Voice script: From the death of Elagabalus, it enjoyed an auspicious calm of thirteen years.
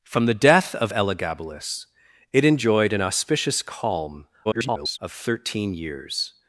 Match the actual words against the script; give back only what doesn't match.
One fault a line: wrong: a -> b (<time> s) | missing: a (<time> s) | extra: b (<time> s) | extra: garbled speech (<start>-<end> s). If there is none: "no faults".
extra: garbled speech (4.4-5.0 s)